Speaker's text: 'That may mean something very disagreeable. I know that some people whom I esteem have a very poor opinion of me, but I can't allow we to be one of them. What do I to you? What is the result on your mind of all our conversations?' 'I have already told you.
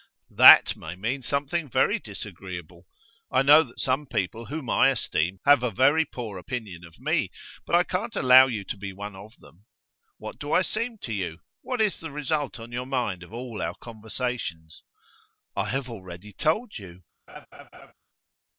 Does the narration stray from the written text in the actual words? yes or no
yes